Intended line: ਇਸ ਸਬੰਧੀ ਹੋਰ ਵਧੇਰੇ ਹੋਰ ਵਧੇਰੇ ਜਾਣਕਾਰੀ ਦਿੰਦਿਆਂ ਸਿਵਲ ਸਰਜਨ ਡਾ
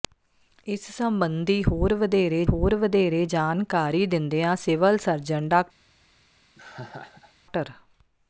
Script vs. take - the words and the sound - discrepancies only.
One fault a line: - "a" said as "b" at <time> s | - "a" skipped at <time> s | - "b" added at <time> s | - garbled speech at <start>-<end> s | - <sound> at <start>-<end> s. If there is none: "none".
- laugh at 6.6-7.3 s